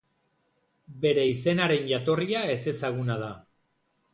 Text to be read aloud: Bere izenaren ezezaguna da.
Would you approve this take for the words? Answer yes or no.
no